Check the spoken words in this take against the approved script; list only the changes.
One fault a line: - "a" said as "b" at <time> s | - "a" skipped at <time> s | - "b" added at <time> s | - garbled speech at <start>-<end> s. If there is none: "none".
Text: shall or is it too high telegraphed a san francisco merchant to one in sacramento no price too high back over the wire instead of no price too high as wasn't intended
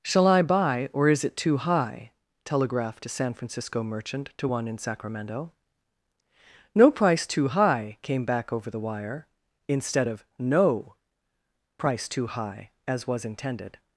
- "i buy" added at 0.3 s
- "came" added at 8.0 s
- "wasn't" said as "was" at 13.1 s